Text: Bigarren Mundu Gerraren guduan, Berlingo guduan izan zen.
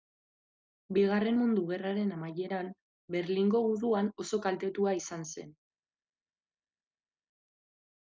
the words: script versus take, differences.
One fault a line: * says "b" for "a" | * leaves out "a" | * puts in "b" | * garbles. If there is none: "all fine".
* says "amaieran" for "guduan"
* puts in "oso kaltetua"